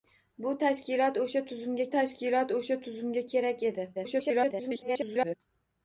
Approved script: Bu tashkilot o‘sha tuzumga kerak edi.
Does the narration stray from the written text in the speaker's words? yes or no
yes